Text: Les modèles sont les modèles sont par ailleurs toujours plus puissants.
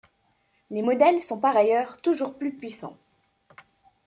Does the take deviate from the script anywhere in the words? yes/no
yes